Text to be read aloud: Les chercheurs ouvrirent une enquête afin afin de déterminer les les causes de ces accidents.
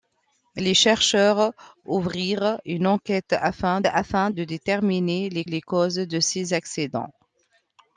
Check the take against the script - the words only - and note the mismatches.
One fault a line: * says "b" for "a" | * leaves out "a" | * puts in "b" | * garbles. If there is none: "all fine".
all fine